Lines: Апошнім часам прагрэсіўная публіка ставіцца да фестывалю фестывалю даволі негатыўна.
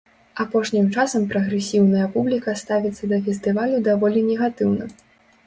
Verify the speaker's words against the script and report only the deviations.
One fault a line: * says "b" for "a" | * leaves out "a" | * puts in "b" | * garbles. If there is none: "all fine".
* leaves out "фестывалю"